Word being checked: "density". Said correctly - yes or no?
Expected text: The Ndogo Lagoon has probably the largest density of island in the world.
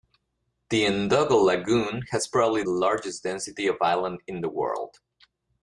yes